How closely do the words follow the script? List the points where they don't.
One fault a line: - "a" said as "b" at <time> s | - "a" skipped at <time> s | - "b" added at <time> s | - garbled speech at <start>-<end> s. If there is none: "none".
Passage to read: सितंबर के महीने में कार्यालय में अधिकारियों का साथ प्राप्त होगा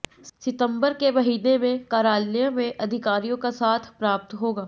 none